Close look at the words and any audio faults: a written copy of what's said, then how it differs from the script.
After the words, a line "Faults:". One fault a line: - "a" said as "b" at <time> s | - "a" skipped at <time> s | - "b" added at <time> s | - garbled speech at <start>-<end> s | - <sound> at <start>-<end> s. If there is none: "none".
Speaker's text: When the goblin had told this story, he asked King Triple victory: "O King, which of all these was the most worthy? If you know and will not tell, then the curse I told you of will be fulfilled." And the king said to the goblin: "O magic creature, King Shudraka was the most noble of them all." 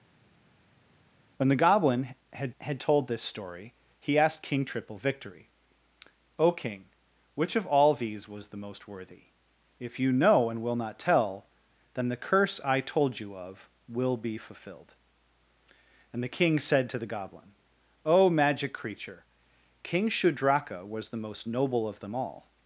When the goblin had had told this story, he asked King Triple victory: "O King, which of all these was the most worthy? If you know and will not tell, then the curse I told you of will be fulfilled." And the king said to the goblin: "O magic creature, King Shudraka was the most noble of them all."
Faults:
- "had" added at 2.6 s